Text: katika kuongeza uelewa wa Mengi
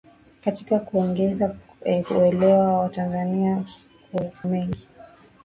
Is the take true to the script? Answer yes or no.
yes